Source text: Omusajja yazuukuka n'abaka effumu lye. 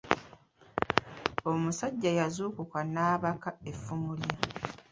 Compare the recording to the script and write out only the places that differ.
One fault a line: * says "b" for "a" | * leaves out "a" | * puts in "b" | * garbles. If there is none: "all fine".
all fine